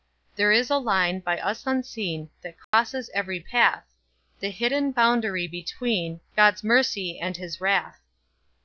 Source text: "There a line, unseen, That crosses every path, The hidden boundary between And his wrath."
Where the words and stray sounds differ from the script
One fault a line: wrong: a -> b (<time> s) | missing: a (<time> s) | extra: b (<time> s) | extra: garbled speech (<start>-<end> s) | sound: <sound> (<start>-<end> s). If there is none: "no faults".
extra: is (0.5 s)
extra: by us (1.2 s)
sound: dropout (2.6-2.7 s)
extra: God's mercy (6.4 s)